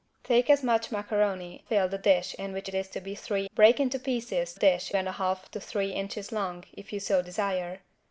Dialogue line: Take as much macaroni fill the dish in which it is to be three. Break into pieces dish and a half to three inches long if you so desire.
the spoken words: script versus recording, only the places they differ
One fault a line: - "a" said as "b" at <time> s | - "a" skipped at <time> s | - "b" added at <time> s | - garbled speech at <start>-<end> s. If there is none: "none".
none